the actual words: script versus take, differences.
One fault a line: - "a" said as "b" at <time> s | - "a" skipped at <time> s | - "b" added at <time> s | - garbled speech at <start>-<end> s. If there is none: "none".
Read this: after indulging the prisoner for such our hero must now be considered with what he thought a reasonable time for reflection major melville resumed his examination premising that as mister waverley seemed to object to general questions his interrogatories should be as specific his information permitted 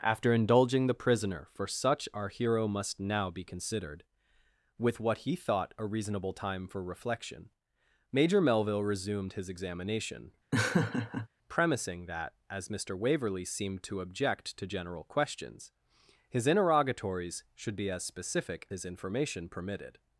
none